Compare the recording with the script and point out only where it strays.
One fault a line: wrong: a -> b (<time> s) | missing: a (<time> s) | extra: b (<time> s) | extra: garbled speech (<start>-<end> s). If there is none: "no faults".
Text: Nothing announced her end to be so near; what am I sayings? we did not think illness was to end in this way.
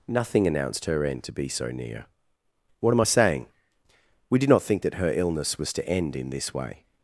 wrong: sayings -> saying (3.0 s)
extra: that her (4.8 s)